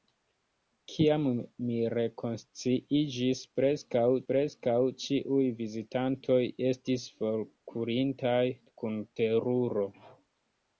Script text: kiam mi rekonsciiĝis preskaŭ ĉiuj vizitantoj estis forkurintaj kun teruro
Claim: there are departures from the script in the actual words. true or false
true